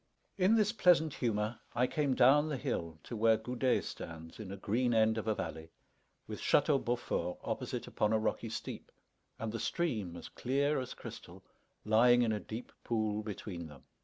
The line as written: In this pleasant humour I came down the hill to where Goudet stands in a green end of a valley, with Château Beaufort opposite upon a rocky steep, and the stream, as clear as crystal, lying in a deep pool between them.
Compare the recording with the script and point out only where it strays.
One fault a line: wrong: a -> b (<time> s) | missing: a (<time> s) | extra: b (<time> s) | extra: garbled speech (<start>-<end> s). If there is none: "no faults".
no faults